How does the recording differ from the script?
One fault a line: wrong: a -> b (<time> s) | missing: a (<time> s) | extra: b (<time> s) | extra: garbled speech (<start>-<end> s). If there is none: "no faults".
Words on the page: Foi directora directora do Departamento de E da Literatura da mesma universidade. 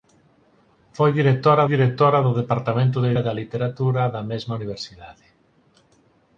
no faults